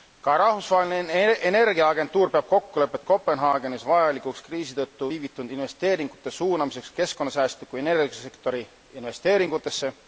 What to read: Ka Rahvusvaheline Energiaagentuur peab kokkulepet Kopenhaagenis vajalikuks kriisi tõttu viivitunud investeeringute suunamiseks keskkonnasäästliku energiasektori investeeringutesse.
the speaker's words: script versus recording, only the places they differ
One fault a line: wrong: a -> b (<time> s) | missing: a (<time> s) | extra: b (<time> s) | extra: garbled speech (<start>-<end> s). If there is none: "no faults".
no faults